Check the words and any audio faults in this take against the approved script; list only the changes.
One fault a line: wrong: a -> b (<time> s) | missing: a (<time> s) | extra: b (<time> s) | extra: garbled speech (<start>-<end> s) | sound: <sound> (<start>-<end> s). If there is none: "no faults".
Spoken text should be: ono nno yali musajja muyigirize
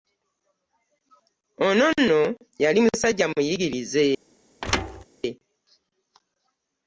sound: thud (4.6-5.0 s)